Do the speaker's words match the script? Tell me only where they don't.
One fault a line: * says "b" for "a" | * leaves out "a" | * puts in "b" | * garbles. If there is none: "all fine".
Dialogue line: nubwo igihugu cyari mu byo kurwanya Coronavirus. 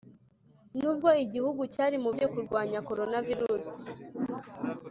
all fine